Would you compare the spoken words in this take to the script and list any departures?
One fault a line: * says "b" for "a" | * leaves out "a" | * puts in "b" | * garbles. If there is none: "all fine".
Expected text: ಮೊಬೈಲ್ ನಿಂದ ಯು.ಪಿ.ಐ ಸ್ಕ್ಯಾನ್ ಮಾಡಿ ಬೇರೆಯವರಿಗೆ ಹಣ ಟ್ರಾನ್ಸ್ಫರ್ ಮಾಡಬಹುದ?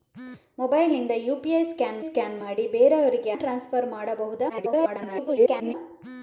* puts in "ಸ್ಕ್ಯಾನ್"
* leaves out "ಹಣ"
* garbles